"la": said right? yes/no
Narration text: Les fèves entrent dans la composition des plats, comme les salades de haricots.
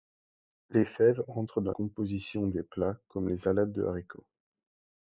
no